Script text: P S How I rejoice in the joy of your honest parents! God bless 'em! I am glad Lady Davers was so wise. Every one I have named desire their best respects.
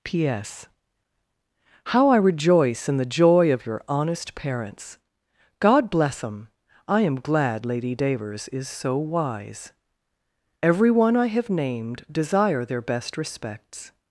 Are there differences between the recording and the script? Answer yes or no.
yes